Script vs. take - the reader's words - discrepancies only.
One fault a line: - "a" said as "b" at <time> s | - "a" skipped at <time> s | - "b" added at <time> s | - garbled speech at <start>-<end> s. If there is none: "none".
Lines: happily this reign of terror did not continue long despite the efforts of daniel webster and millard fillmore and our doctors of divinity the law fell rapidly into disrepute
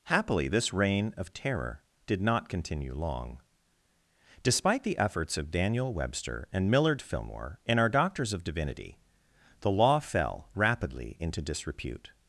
none